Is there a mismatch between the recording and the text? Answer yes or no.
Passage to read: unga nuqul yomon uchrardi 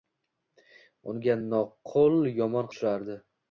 no